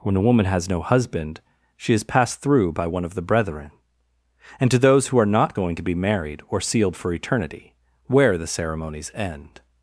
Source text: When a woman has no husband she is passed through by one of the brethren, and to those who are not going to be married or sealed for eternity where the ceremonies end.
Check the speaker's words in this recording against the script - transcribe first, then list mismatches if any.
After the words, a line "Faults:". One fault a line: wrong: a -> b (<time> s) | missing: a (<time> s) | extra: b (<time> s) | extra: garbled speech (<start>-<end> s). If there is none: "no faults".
When a woman has no husband she is passed through by one of the brethren, and to those who are not going to be married or sealed for eternity where the ceremonies end.
Faults:
no faults